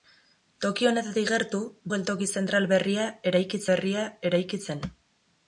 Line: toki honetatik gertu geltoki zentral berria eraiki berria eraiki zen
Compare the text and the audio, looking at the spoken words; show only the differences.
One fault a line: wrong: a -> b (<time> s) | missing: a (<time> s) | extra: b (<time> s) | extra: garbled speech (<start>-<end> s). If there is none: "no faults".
no faults